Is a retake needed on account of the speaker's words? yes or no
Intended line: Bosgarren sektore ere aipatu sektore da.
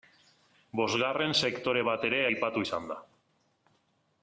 yes